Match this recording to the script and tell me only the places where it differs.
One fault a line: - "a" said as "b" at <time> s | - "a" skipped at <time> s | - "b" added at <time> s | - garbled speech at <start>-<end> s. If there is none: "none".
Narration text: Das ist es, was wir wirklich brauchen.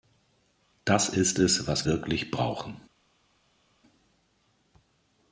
- "wir" skipped at 1.9 s